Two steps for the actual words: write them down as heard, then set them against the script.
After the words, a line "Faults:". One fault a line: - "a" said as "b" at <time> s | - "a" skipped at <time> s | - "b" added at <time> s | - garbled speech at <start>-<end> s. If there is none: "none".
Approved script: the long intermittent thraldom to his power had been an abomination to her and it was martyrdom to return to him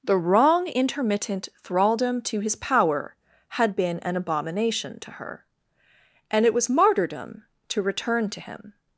the wrong intermittent thraldom to his power had been an abomination to her and it was martyrdom to return to him
Faults:
- "long" said as "wrong" at 0.2 s